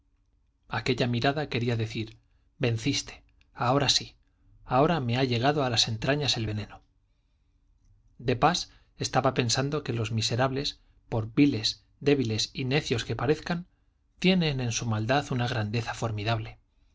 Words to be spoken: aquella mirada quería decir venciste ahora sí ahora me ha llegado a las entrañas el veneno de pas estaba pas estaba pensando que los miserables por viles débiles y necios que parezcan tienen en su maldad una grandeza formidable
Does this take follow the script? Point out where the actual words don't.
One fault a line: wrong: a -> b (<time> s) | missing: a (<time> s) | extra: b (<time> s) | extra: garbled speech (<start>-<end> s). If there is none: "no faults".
missing: pas estaba (9.3 s)